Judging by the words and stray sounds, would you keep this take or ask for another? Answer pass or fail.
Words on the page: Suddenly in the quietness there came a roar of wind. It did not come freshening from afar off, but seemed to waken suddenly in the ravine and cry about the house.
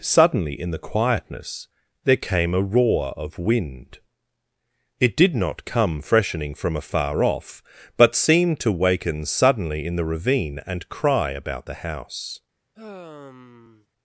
fail